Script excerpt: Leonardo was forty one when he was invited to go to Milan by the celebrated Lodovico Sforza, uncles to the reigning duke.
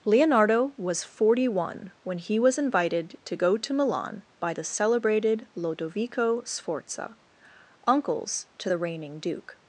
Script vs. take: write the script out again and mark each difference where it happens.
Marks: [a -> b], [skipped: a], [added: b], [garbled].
Leonardo was forty one when he was invited to go to Milan by the celebrated Lodovico Sforza, uncles to the reigning duke.